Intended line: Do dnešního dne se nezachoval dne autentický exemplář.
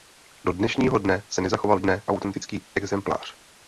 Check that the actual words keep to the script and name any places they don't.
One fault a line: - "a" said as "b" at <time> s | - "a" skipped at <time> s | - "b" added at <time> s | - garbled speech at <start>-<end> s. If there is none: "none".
none